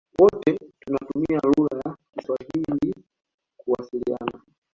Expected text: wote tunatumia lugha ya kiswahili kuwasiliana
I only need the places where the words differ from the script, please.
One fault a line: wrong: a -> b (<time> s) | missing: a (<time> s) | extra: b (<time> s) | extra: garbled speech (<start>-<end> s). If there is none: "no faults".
no faults